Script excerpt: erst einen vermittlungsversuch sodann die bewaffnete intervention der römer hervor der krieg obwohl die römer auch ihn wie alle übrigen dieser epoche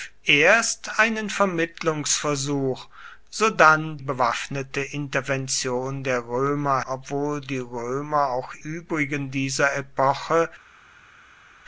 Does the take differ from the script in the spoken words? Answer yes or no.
yes